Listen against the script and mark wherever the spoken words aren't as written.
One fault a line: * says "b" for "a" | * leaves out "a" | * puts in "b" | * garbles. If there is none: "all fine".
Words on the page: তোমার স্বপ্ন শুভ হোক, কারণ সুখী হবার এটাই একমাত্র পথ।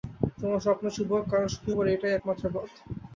all fine